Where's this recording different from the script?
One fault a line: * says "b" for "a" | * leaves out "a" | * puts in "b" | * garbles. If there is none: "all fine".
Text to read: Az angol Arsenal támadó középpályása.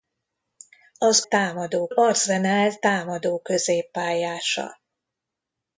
* says "támadó" for "angol"